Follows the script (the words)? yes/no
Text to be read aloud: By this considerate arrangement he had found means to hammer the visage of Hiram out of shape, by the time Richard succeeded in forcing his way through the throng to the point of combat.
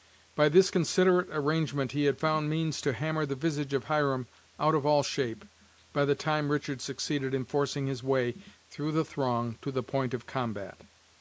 no